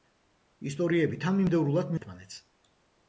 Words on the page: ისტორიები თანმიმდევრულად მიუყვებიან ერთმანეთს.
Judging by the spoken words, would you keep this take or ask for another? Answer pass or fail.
fail